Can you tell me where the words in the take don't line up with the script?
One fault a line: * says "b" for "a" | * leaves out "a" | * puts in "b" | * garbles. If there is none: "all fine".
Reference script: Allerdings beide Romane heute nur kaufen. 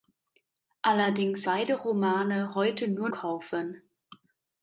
all fine